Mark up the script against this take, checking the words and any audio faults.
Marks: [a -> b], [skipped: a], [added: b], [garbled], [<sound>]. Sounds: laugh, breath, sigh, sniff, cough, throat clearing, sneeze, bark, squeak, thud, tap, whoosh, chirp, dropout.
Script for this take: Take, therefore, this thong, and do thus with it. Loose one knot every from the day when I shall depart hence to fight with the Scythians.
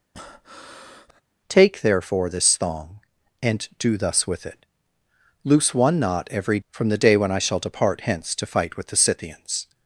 [breath] Take, therefore, this thong, and do thus with it. Loose one knot every from the day when I shall depart hence to fight with the Scythians.